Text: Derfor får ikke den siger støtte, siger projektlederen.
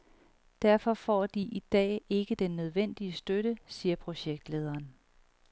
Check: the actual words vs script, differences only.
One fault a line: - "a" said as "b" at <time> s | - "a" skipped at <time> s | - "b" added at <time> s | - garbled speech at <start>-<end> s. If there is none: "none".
- "de i dag" added at 1.3 s
- "siger" said as "nødvendige" at 2.6 s